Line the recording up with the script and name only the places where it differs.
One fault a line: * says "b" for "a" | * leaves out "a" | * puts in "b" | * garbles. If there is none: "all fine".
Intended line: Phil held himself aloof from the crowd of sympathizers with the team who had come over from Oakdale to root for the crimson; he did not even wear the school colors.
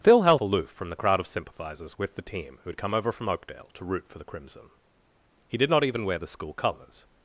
* leaves out "himself"